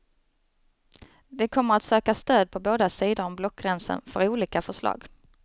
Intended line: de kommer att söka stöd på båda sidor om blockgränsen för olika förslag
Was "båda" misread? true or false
false